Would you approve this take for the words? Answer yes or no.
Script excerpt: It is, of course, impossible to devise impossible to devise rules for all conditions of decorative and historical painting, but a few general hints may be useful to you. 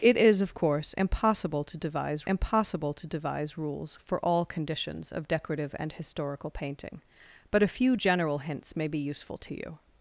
yes